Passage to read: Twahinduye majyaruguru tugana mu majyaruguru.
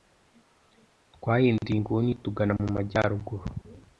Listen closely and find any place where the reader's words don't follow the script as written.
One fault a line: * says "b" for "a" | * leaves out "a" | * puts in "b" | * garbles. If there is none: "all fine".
* says "inguni" for "majyaruguru"